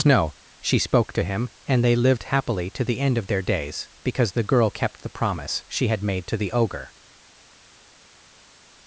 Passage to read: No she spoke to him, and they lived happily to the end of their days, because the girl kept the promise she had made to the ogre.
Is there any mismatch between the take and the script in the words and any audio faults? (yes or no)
no